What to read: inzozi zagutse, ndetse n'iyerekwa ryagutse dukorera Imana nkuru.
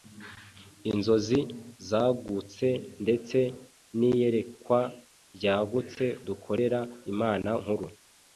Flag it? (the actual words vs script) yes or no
no